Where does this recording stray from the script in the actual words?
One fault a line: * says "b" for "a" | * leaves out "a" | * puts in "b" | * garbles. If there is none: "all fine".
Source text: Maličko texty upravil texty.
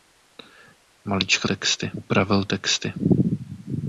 all fine